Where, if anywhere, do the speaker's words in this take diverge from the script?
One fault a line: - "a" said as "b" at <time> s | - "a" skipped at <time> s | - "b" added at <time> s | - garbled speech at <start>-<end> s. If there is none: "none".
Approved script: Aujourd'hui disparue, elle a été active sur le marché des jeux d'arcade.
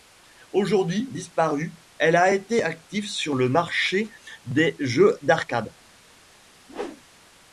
none